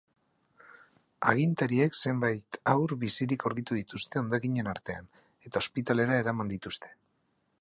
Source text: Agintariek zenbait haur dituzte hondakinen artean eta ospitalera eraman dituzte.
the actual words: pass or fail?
fail